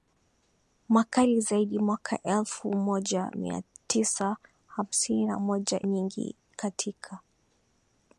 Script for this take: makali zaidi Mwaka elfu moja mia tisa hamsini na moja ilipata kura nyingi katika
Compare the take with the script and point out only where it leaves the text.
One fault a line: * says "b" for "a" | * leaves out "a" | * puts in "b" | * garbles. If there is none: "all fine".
* leaves out "ilipata kura"